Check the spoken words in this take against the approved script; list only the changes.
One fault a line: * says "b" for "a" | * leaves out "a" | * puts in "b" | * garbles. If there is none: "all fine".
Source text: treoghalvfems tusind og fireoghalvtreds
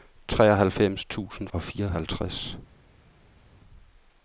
all fine